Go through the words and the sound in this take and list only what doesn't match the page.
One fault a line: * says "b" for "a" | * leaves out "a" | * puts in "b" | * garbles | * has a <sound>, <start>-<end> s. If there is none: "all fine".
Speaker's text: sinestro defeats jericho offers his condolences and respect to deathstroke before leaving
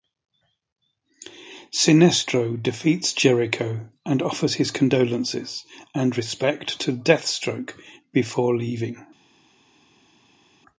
* puts in "and"